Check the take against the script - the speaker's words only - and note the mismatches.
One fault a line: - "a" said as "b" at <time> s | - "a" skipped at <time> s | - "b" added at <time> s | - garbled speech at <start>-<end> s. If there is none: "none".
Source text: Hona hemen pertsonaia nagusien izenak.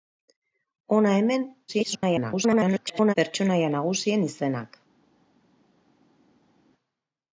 - garbled speech at 1.7-3.1 s